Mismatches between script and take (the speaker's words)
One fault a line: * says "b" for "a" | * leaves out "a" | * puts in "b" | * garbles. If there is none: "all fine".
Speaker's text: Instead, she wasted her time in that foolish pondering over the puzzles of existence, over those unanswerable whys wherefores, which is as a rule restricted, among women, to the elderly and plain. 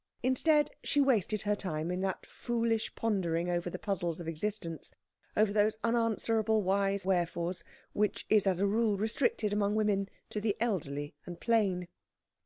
all fine